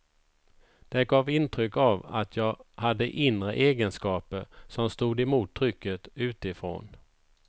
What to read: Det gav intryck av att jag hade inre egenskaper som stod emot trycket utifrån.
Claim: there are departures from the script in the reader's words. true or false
false